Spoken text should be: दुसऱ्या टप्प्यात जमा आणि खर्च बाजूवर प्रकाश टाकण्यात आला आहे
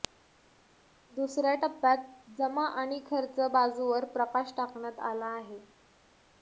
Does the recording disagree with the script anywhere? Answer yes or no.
no